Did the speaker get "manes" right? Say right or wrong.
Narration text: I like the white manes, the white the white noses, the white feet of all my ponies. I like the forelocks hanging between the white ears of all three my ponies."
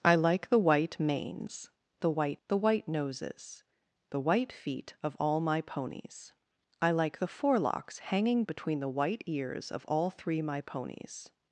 right